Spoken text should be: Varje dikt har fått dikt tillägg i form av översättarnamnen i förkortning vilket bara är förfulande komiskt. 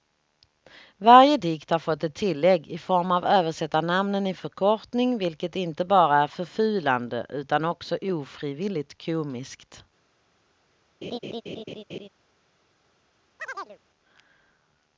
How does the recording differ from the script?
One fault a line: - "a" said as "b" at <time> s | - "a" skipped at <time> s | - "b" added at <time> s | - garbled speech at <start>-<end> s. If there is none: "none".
- "dikt" said as "ett" at 2.0 s
- "inte" added at 5.5 s
- "utan också ofrivilligt" added at 7.3 s